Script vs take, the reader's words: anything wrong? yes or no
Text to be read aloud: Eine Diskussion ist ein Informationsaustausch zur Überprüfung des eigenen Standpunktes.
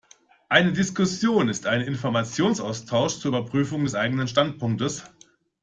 no